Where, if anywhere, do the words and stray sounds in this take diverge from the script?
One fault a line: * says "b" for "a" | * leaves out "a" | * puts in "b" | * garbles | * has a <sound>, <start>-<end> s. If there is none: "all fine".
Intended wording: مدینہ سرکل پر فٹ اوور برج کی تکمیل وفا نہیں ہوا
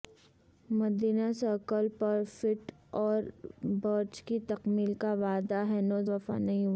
* puts in "کا وعدہ ہنوز"